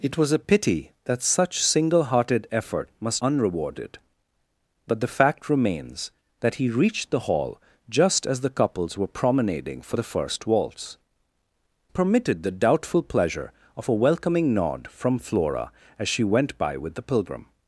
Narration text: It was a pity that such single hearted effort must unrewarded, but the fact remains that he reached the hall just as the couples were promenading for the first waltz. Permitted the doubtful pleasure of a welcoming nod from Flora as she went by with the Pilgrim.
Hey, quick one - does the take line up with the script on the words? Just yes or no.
yes